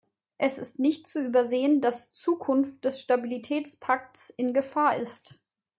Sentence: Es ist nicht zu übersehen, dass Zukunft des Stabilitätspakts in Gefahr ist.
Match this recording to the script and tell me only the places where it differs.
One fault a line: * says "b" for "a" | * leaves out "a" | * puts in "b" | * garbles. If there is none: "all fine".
all fine